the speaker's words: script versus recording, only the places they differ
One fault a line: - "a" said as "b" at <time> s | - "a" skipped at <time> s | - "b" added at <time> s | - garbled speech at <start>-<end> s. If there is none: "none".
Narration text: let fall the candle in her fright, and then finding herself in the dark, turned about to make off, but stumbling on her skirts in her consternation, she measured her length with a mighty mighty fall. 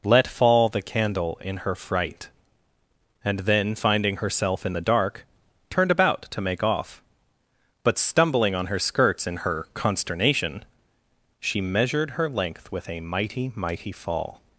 none